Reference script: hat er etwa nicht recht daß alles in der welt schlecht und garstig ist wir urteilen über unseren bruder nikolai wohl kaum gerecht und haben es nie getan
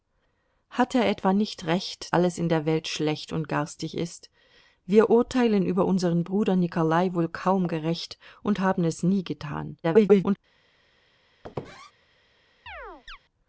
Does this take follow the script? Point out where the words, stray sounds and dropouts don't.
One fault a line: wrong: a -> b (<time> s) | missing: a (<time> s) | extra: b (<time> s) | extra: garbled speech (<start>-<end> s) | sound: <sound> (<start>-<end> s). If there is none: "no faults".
missing: daß (2.1 s)
extra: garbled speech (9.8-10.4 s)
sound: squeak (11.4-11.9 s)
sound: chirp (12.7-13.2 s)